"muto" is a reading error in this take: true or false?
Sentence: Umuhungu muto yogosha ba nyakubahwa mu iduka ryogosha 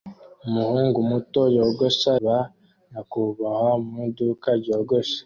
false